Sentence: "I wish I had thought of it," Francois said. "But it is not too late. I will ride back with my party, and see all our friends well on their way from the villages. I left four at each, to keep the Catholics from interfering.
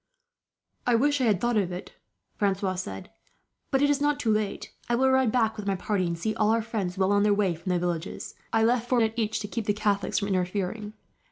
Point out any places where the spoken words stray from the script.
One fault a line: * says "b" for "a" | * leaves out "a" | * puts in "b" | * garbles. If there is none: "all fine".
all fine